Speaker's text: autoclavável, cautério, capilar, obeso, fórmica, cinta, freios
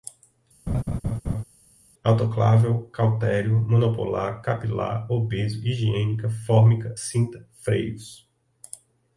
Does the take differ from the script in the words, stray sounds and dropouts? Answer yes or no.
yes